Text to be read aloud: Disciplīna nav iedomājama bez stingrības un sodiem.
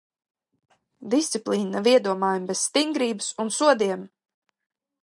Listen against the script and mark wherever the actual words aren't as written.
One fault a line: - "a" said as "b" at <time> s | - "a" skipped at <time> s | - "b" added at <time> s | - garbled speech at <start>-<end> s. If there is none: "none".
none